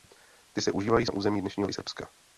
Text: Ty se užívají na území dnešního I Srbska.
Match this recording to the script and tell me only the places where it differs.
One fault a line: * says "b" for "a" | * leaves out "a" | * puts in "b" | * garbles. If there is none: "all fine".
all fine